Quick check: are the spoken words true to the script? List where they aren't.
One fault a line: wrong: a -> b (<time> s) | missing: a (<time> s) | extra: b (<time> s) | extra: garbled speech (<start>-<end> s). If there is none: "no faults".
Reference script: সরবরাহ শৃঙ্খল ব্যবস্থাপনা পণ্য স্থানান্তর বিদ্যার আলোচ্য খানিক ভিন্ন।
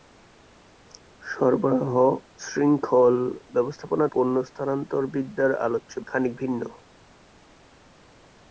no faults